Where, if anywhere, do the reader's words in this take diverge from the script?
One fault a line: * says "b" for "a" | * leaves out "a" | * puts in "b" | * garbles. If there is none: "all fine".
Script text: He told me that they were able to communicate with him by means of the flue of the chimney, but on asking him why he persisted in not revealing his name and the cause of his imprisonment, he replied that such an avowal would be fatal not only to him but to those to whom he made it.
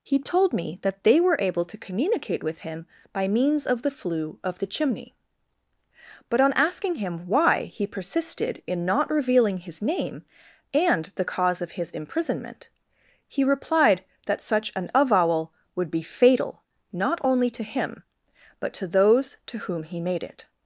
all fine